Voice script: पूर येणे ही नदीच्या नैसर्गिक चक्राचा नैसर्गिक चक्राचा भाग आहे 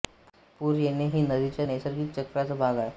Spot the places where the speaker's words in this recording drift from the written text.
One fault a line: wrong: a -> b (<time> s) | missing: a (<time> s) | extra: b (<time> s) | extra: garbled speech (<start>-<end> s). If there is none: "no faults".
missing: नैसर्गिक चक्राचा (2.5 s)